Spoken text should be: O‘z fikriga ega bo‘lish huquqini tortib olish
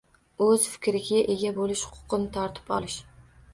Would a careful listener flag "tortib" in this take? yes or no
no